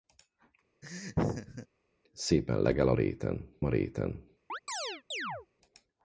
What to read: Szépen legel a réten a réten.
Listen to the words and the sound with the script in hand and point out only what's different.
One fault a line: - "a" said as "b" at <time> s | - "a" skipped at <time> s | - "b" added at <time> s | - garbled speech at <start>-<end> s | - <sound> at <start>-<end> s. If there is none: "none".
- laugh at 0.8-1.7 s
- chirp at 4.5-5.5 s